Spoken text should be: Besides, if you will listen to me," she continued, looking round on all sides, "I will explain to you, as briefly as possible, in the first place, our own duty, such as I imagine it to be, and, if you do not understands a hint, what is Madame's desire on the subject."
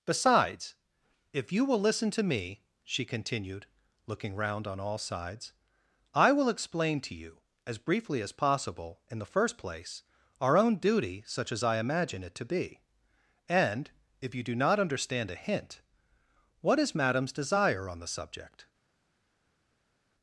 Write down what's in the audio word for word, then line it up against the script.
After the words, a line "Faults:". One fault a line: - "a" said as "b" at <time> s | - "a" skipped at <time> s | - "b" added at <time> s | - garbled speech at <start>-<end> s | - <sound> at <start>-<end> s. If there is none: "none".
Besides, if you will listen to me," she continued, looking round on all sides, "I will explain to you, as briefly as possible, in the first place, our own duty, such as I imagine it to be, and, if you do not understand a hint, what is Madame's desire on the subject."
Faults:
- "understands" said as "understand" at 14.8 s